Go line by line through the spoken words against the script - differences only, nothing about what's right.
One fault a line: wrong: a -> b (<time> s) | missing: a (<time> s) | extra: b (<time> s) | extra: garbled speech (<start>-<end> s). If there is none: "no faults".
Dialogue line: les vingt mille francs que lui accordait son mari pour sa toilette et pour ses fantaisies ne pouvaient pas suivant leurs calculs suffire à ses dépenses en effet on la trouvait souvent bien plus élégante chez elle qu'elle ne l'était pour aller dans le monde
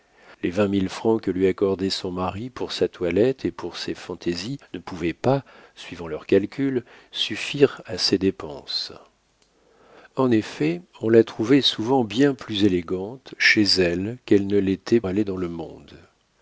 missing: pour (15.0 s)